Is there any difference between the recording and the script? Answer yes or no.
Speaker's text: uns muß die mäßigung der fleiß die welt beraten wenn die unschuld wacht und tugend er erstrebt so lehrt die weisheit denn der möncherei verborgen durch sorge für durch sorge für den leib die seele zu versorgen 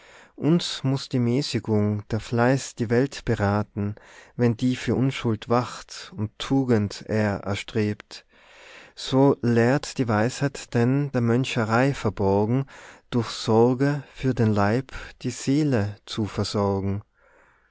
yes